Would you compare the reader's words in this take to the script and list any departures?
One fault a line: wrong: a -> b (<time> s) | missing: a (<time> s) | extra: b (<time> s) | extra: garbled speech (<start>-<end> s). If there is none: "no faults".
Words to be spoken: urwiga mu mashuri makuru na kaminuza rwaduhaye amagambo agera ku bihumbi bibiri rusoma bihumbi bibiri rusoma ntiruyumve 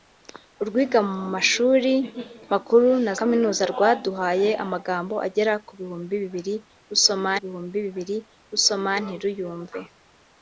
no faults